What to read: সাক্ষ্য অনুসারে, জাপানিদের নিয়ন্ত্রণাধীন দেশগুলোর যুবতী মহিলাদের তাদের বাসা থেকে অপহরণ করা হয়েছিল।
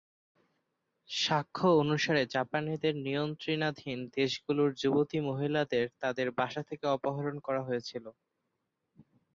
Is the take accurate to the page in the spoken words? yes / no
yes